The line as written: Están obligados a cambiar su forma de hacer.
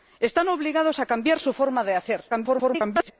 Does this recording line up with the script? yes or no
no